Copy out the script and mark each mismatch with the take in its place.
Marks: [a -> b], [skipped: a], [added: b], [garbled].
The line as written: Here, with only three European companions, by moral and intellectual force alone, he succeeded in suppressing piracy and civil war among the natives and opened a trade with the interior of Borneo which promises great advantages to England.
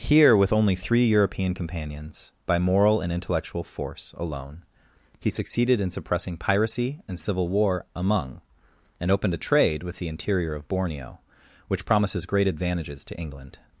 Here, with only three European companions, by moral and intellectual force alone, he succeeded in suppressing piracy and civil war among [skipped: the natives] and opened a trade with the interior of Borneo which promises great advantages to England.